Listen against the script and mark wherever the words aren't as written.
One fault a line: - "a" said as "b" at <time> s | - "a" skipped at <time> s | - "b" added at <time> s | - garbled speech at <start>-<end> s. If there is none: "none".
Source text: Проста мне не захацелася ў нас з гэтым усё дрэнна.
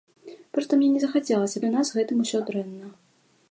none